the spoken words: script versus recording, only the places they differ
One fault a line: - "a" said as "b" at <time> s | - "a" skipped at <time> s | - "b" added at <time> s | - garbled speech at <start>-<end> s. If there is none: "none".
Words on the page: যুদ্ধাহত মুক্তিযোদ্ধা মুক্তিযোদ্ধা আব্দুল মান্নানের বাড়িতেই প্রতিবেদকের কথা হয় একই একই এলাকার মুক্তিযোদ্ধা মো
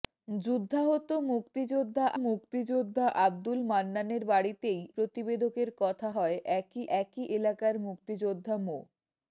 none